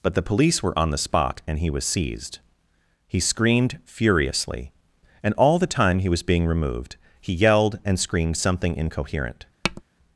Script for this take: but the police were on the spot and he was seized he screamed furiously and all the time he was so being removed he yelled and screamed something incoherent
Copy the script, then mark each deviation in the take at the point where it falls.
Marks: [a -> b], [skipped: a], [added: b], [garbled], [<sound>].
but the police were on the spot and he was seized he screamed furiously and all the time he was [skipped: so] being removed he yelled and screamed something incoherent [tap]